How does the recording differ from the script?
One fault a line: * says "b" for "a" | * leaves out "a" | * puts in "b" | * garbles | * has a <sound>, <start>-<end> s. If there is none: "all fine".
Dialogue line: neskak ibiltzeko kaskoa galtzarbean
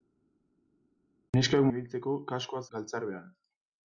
all fine